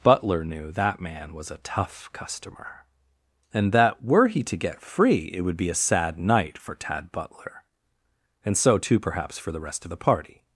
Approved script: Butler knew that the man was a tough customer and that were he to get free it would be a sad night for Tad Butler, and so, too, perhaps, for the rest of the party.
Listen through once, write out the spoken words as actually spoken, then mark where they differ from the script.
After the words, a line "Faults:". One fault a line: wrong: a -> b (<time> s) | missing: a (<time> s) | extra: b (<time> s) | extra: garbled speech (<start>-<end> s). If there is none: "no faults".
Butler knew that man was a tough customer and that were he to get free it would be a sad night for Tad Butler, and so, too, perhaps, for the rest of the party.
Faults:
missing: the (1.0 s)